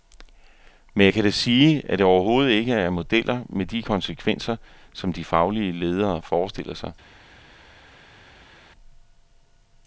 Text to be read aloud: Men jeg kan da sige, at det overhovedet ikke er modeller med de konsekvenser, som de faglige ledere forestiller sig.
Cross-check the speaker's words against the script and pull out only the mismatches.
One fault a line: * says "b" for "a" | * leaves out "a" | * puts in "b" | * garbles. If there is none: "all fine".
all fine